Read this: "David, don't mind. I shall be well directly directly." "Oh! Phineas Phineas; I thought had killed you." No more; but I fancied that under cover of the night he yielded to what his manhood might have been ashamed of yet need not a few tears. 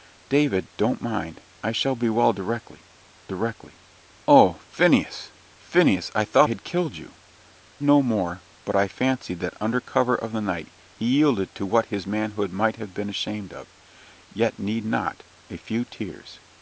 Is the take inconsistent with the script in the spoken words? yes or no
no